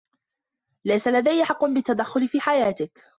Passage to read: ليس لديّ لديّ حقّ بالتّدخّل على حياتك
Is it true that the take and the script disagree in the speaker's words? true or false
true